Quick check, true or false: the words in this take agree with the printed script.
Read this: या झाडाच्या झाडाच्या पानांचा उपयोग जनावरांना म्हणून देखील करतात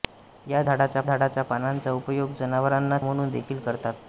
true